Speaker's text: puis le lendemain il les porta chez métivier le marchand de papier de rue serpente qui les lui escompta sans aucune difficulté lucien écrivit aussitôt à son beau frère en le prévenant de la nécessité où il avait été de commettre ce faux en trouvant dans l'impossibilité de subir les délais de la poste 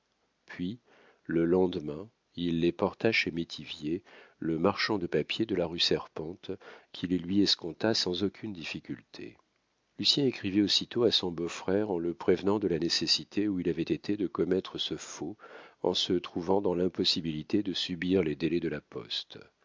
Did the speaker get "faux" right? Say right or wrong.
right